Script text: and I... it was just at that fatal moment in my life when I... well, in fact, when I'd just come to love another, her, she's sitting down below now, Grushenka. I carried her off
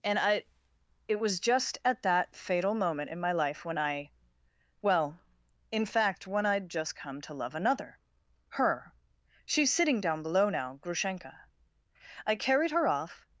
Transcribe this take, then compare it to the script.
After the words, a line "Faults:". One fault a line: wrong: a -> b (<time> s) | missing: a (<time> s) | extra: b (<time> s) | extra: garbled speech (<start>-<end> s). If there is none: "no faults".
and I... it was just at that fatal moment in my life when I... well, in fact, when I'd just come to love another, her, she's sitting down below now, Grushenka. I carried her off
Faults:
no faults